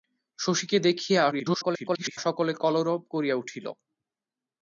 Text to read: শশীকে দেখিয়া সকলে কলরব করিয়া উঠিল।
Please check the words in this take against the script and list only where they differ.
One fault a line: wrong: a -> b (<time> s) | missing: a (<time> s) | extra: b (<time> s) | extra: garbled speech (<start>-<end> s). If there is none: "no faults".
extra: garbled speech (1.3-2.2 s)